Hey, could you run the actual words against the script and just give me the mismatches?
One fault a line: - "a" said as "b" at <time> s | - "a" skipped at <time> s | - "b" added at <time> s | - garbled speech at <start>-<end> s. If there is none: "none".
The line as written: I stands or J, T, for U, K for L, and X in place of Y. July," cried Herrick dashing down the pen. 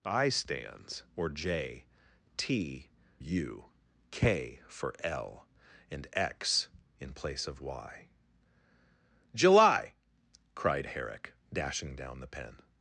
- "for" skipped at 2.9 s